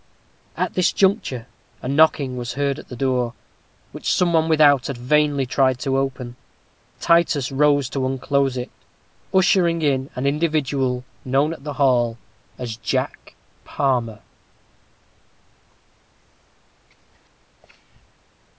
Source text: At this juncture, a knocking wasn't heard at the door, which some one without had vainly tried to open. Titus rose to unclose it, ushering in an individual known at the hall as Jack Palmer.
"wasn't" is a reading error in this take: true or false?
true